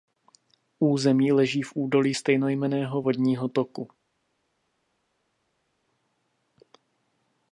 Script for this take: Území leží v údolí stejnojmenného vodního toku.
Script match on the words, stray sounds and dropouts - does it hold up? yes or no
yes